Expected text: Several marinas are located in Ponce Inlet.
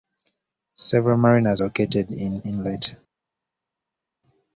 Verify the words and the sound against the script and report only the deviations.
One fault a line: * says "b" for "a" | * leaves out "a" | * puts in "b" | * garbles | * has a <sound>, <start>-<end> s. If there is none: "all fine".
* leaves out "are"
* leaves out "Ponce"